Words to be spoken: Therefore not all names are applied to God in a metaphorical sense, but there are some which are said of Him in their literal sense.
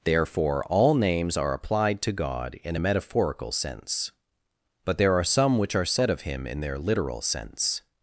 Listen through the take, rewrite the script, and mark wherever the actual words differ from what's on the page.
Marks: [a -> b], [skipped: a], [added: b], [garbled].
Therefore [skipped: not] all names are applied to God in a metaphorical sense, but there are some which are said of Him in their literal sense.